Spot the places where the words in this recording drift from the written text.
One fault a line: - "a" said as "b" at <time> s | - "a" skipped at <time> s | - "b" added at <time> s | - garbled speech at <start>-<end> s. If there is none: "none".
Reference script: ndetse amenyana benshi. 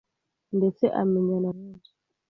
none